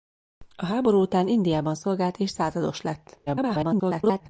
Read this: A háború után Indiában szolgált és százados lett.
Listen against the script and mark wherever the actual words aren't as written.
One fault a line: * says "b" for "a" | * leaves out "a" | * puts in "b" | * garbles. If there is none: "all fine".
* garbles